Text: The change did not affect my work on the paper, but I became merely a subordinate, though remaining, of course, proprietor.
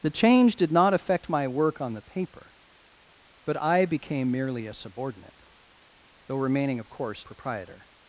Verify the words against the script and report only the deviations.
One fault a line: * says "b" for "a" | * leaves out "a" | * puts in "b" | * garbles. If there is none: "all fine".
all fine